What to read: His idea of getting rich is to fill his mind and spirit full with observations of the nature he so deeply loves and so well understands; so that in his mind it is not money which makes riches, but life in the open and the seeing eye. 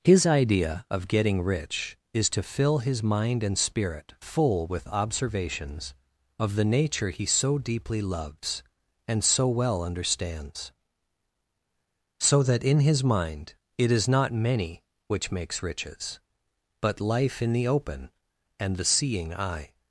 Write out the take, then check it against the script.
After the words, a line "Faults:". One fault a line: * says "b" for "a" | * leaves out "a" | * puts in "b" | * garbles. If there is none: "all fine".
His idea of getting rich is to fill his mind and spirit full with observations of the nature he so deeply loves and so well understands; so that in his mind it is not many which makes riches, but life in the open and the seeing eye.
Faults:
* says "many" for "money"